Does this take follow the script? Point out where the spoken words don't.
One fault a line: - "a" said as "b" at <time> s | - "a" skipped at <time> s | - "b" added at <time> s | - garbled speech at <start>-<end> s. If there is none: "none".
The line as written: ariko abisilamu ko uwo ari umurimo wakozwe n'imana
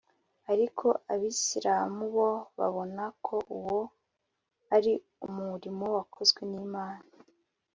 - "bo babona" added at 2.1 s